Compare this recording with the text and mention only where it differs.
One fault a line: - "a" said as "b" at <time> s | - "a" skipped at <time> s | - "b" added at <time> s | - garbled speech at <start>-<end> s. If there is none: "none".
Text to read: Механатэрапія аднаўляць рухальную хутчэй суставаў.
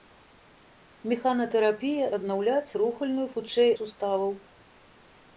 none